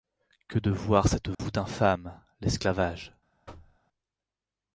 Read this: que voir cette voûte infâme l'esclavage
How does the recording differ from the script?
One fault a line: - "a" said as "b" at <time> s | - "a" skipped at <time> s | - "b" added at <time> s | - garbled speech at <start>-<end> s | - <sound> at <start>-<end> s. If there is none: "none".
- "de" added at 0.6 s
- dropout at 1.3-1.4 s
- thud at 3.5-3.8 s